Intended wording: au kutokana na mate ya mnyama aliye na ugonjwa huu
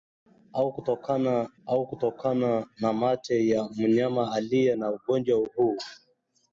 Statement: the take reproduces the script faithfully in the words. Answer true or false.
false